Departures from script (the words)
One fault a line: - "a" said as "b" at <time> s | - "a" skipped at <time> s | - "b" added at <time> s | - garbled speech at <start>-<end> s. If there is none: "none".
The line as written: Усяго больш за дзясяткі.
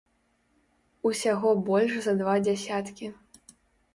- "два" added at 2.2 s